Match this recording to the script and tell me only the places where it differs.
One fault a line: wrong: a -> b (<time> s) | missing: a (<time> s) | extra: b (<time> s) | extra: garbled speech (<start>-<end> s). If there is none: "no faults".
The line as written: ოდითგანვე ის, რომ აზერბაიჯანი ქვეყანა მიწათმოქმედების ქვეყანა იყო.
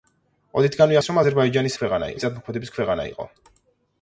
no faults